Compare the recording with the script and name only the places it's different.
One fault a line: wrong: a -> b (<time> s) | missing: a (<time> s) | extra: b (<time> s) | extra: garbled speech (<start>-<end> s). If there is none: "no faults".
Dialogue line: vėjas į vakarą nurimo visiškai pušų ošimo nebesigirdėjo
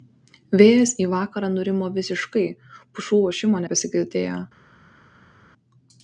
no faults